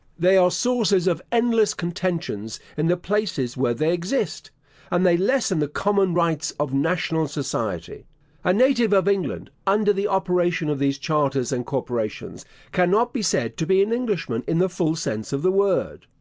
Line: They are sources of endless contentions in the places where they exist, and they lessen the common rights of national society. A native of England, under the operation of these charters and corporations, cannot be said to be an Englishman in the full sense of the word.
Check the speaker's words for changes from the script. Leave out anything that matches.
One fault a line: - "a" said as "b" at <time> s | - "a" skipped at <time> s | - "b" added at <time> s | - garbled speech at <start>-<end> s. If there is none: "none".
none